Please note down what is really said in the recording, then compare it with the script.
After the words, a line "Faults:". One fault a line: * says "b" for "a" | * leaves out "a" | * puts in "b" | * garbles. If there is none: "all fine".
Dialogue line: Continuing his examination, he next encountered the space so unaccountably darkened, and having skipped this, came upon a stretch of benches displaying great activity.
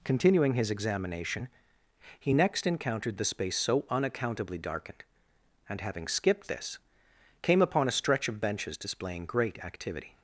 Continuing his examination, he next encountered the space so unaccountably darkened, and having skipped this, came upon a stretch of benches displaying great activity.
Faults:
all fine